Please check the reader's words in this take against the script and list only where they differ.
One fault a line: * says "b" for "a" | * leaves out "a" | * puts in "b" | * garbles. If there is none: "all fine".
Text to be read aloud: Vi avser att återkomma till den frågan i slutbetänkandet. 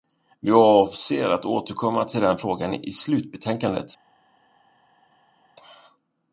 all fine